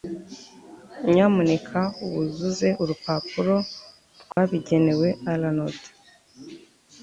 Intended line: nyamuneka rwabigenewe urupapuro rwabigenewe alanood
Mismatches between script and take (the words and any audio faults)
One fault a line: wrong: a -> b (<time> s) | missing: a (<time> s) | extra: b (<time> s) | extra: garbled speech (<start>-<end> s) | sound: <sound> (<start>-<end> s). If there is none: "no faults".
wrong: rwabigenewe -> wuzuze (2.1 s)
sound: dropout (4.3-4.4 s)